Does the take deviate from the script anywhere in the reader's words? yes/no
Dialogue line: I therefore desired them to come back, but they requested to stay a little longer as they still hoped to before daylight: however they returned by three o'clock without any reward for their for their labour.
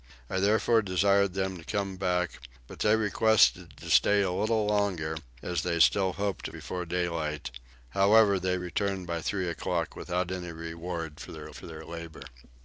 no